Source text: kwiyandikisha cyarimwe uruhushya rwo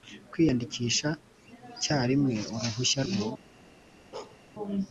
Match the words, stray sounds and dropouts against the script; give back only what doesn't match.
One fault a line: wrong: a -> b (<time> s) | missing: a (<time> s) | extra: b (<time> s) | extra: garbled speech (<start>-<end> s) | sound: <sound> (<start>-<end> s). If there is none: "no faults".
sound: bark (4.1-4.4 s)